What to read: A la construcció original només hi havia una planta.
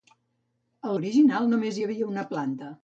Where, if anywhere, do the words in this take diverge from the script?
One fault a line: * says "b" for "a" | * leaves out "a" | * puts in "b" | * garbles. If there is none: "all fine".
* leaves out "la construcció"